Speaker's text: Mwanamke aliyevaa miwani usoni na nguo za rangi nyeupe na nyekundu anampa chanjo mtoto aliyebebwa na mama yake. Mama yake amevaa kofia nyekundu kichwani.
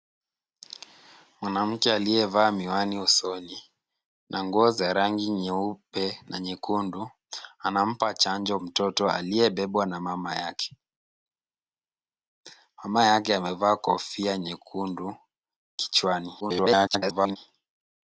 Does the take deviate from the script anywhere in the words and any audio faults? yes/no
yes